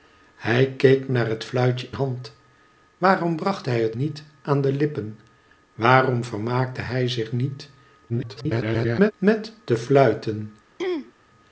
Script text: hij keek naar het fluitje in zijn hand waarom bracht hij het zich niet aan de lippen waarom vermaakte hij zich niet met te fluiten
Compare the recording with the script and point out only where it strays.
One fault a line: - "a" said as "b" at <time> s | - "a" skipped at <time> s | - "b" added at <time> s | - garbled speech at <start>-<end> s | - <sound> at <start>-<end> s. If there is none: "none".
- "in zijn" skipped at 1.9 s
- "zich" skipped at 4.0 s
- garbled speech at 8.1-9.1 s
- throat clearing at 10.8-11.1 s